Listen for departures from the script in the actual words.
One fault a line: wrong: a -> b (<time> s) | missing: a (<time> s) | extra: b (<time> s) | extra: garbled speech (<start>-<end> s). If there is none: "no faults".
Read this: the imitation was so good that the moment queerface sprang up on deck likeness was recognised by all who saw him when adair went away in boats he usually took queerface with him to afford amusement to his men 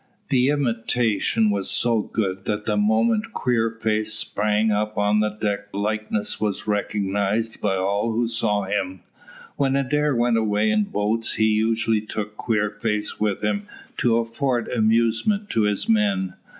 no faults